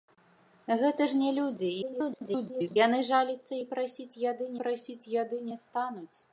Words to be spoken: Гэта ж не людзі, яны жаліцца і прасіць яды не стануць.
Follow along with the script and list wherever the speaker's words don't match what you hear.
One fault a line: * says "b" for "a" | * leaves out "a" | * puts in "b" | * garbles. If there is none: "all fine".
* garbles
* puts in "прасіць яды"